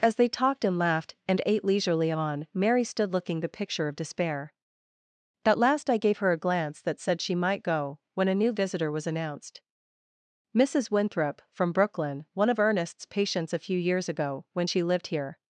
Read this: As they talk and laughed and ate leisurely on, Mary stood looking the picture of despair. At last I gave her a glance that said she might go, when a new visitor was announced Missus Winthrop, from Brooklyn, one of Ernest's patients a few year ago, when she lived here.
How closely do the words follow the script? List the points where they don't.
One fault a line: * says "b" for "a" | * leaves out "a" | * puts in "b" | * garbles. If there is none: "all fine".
* says "talked" for "talk"
* says "years" for "year"